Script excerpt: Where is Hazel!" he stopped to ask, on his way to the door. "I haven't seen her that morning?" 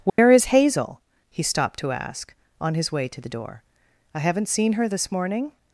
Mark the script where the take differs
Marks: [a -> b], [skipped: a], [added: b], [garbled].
Where is Hazel!" he stopped to ask, on his way to the door. "I haven't seen her [that -> this] morning?"